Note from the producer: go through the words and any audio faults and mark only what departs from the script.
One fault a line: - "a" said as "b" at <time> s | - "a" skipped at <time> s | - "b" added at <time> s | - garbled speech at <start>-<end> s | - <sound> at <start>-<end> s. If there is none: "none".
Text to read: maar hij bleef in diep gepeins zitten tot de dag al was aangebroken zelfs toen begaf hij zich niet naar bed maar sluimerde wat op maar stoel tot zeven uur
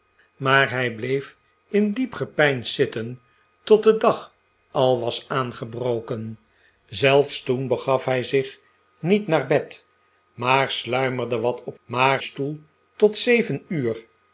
none